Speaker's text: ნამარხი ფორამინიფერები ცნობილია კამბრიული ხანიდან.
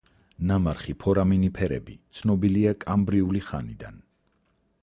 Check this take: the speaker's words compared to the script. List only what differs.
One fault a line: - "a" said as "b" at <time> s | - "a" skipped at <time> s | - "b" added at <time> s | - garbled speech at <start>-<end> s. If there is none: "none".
none